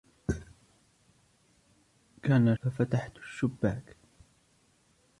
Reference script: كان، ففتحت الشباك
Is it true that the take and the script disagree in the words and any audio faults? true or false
false